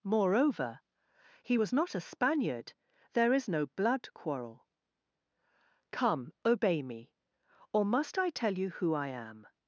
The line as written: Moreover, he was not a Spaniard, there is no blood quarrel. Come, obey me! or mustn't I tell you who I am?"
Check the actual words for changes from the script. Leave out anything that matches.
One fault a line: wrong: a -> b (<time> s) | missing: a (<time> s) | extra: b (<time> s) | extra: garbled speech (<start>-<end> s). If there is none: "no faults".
wrong: mustn't -> must (7.8 s)